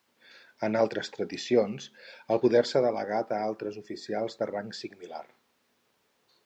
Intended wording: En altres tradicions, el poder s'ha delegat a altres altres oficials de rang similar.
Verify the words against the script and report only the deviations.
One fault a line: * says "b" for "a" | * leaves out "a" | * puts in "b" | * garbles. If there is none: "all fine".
* leaves out "altres"